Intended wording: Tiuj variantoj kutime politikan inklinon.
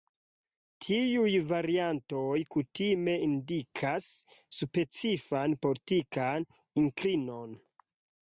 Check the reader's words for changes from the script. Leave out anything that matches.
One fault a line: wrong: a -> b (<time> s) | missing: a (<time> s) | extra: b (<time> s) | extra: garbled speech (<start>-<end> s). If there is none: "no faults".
extra: indikas specifan (3.3 s)